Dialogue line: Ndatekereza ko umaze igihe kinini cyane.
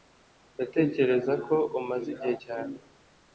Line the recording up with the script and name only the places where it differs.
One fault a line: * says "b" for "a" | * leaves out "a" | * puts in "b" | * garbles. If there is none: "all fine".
* leaves out "kinini"